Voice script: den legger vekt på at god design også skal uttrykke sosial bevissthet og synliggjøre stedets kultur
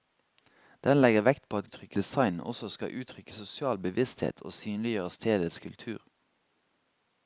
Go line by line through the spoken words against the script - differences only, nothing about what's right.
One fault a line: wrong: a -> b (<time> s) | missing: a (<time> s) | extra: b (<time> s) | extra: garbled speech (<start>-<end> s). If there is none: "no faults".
wrong: god -> uttrykke (1.6 s)